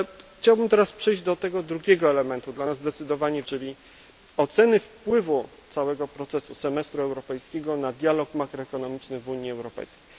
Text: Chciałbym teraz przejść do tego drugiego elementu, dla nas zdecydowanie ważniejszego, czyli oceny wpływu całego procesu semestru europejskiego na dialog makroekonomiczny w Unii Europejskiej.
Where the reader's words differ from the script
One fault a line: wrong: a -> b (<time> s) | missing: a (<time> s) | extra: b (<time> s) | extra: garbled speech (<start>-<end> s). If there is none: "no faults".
missing: ważniejszego (3.4 s)